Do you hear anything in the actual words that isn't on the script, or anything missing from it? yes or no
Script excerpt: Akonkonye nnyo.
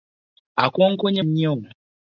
no